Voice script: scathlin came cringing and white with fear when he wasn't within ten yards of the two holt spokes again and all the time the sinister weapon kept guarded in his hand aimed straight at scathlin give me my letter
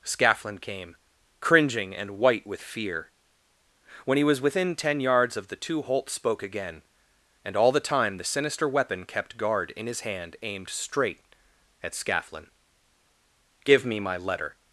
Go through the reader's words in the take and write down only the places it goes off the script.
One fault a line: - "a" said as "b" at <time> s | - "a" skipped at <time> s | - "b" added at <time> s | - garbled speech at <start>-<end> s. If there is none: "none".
- "wasn't" said as "was" at 4.2 s
- "spokes" said as "spoke" at 6.1 s
- "guarded" said as "guard" at 9.4 s